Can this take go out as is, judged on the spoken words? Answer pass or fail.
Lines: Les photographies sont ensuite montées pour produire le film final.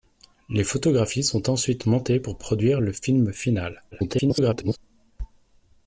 fail